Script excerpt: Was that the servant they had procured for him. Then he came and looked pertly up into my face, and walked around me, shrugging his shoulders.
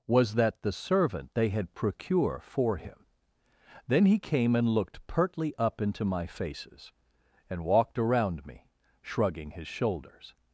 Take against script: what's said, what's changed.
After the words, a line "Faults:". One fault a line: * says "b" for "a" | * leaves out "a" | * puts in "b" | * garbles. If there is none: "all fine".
Was that the servant they had procure for him. Then he came and looked pertly up into my faces, and walked around me, shrugging his shoulders.
Faults:
* says "procure" for "procured"
* says "faces" for "face"